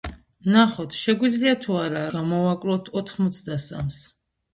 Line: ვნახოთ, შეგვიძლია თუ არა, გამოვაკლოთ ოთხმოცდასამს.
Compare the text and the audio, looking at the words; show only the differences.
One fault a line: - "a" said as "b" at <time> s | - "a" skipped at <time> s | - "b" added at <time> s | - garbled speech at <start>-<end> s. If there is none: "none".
none